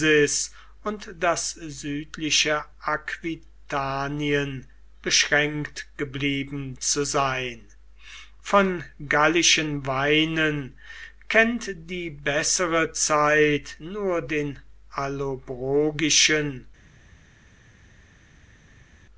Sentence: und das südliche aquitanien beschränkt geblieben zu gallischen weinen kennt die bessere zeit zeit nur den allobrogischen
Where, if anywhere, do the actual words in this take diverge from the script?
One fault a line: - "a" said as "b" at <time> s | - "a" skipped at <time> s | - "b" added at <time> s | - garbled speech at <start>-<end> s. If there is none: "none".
- "sein von" added at 7.0 s
- "zeit" skipped at 13.8 s